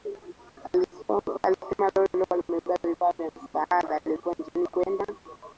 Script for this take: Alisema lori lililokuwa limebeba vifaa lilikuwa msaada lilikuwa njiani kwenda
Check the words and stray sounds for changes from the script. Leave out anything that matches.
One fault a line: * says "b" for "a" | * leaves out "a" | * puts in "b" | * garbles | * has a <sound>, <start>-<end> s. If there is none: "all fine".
* says "vya" for "lilikuwa"